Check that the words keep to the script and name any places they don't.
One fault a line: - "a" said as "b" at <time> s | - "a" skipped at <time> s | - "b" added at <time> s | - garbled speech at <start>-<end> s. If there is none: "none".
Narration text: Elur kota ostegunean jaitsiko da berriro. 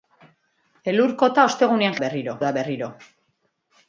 - "jaitsiko" said as "berriro" at 2.0 s